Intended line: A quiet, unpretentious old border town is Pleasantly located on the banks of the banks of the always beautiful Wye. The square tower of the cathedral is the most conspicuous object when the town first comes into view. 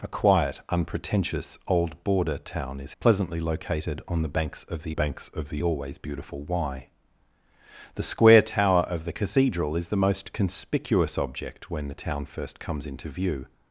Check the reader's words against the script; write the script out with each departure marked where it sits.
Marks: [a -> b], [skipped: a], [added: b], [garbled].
A quiet, unpretentious old border town is Pleasantly located on the banks of the banks of the always beautiful Wye. The square tower of the cathedral is the most conspicuous object when the town first comes into view.